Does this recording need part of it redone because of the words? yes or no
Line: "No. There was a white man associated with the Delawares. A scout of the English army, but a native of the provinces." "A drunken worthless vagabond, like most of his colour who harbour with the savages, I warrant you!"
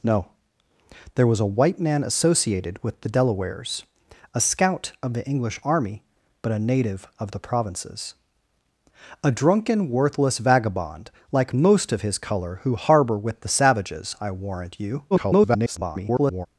yes